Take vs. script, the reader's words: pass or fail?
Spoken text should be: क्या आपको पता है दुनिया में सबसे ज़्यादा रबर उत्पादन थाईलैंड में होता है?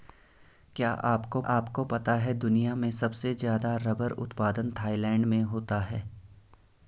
fail